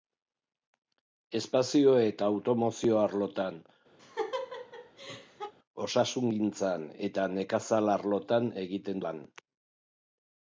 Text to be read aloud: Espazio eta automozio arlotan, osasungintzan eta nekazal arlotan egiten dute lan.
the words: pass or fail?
fail